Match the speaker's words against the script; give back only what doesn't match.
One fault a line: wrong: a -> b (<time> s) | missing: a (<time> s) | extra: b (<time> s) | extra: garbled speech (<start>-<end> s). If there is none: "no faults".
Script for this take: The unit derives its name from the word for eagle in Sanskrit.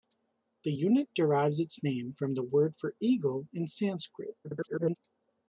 extra: garbled speech (4.4-5.0 s)